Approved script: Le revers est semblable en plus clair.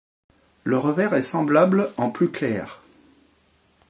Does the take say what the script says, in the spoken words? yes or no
yes